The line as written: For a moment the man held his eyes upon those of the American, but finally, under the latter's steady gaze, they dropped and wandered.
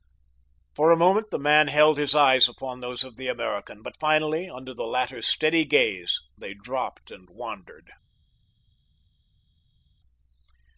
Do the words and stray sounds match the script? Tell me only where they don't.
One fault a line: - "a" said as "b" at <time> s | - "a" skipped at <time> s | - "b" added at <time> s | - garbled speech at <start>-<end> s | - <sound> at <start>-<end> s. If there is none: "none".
none